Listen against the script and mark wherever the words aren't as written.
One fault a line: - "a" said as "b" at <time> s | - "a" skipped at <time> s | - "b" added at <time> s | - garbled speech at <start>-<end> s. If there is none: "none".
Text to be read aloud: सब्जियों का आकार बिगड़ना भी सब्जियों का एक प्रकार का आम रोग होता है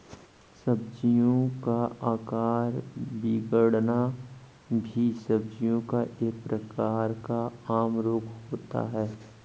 none